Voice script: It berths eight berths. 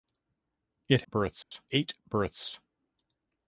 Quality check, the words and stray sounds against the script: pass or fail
fail